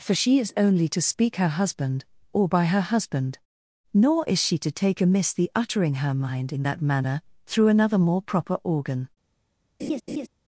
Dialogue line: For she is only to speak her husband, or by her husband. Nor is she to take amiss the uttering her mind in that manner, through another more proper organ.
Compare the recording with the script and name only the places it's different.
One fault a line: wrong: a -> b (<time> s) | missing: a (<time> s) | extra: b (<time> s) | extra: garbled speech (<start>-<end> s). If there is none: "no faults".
no faults